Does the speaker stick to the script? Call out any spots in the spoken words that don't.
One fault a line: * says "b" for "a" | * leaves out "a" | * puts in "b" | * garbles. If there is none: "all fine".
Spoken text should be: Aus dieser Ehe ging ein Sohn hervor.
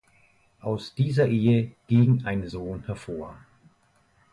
all fine